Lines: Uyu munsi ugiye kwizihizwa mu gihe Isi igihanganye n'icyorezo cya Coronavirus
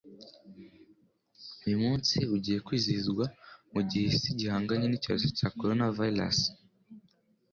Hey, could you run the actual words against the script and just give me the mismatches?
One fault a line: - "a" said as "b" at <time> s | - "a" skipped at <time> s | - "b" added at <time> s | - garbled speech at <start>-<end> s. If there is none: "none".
none